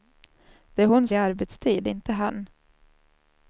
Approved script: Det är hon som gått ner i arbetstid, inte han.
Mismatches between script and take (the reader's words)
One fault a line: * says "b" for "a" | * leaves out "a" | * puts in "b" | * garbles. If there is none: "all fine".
* leaves out "som gått ner"